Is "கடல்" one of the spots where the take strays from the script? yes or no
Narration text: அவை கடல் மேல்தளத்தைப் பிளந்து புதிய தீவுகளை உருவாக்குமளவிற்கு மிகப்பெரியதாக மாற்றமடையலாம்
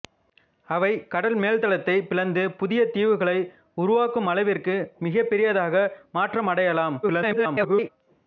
no